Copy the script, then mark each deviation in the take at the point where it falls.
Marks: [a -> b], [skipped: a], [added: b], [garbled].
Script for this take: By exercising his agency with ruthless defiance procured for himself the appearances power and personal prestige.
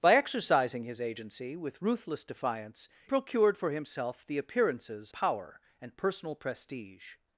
By exercising his agency with ruthless defiance procured for himself the appearances power and personal prestige.